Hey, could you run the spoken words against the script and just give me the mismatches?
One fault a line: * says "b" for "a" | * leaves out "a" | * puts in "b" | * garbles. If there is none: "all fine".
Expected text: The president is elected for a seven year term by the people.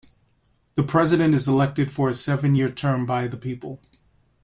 all fine